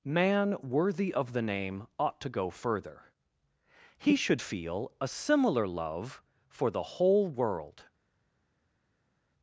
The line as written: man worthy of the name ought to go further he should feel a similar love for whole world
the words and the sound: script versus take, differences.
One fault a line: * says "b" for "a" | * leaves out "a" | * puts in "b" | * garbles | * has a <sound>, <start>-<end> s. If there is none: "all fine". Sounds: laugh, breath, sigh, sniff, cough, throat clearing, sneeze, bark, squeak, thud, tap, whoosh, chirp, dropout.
* puts in "the"